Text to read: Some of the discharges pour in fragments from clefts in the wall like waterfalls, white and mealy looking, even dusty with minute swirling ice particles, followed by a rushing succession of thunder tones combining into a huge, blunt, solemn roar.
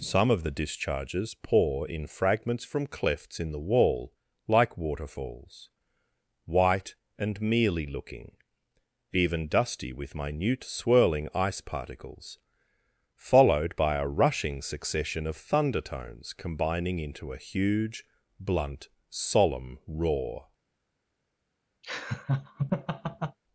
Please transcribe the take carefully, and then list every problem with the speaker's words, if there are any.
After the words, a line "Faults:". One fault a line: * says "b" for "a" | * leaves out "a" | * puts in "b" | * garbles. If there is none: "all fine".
Some of the discharges pour in fragments from clefts in the wall like waterfalls, white and mealy looking, even dusty with minute swirling ice particles, followed by a rushing succession of thunder tones combining into a huge, blunt, solemn roar.
Faults:
all fine